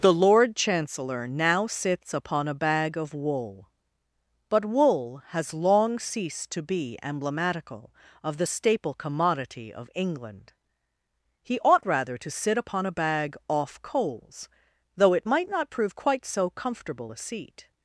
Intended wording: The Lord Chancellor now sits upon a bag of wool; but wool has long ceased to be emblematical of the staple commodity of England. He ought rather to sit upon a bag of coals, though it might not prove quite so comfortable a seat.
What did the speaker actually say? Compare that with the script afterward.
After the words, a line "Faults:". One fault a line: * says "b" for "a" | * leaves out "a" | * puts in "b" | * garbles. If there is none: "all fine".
The Lord Chancellor now sits upon a bag of wool; but wool has long ceased to be emblematical of the staple commodity of England. He ought rather to sit upon a bag off coals, though it might not prove quite so comfortable a seat.
Faults:
* says "off" for "of"